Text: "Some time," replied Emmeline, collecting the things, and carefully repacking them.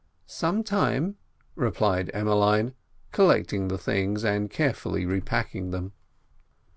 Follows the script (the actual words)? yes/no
yes